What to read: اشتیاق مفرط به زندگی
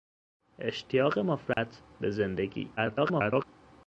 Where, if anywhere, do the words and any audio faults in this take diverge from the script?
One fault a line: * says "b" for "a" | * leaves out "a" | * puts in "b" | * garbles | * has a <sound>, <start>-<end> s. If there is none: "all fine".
* has a dropout, 1.5-1.6 s
* garbles